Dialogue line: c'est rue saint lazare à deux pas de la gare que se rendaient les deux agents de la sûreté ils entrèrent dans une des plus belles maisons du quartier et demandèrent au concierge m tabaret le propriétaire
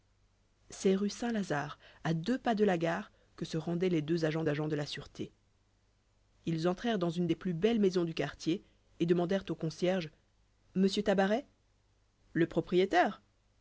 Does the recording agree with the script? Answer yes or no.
no